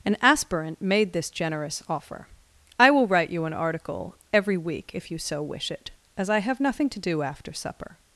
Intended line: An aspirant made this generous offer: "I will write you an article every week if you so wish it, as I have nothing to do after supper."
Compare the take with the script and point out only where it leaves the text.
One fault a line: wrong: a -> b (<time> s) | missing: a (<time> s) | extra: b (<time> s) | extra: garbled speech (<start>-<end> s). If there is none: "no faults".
no faults